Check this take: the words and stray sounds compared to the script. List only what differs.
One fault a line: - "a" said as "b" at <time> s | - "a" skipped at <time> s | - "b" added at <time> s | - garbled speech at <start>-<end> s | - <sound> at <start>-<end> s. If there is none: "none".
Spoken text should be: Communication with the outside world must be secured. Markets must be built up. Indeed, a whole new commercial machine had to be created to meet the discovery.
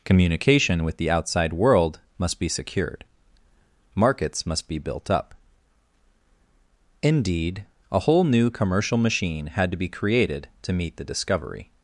none